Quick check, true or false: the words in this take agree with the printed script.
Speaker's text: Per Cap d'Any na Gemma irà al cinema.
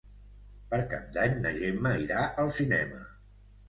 true